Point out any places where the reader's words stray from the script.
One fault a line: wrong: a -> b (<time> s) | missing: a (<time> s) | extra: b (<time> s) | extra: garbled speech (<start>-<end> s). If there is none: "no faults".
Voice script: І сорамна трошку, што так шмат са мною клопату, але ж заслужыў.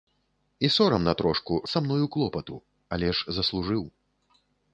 missing: што так шмат (1.6 s)